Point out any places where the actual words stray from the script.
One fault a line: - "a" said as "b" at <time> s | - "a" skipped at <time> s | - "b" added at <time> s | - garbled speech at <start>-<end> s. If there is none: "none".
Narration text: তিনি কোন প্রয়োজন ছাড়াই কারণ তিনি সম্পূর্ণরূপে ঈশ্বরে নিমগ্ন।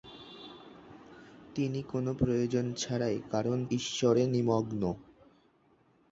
- "তিনি সম্পূর্ণরূপে" skipped at 3.6 s